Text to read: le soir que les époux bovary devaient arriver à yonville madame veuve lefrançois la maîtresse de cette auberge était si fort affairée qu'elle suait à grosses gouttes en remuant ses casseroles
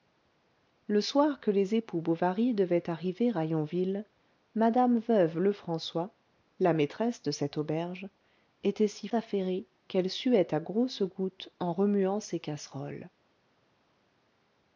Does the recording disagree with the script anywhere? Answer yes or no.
yes